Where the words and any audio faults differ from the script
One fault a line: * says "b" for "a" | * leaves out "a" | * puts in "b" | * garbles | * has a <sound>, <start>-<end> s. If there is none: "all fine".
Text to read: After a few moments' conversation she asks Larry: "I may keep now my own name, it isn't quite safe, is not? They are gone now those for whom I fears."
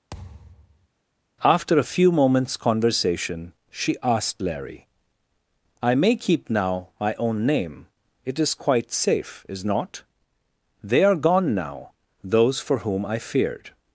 * has a thud, 0.1-0.9 s
* says "asked" for "asks"
* says "is" for "isn't"
* says "feared" for "fears"